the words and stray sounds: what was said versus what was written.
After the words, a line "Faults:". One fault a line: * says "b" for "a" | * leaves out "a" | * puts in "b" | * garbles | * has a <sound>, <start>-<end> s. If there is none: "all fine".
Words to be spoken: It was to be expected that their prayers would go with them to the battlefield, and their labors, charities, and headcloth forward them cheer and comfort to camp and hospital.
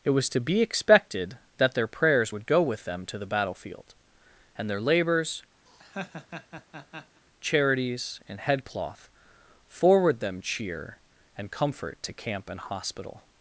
It was to be expected that their prayers would go with them to the battlefield, and their labors, charities, and headcloth forward them cheer and comfort to camp and hospital.
Faults:
* has a laugh, 5.7-7.2 s